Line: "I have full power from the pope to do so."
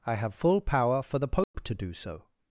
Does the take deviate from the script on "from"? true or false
true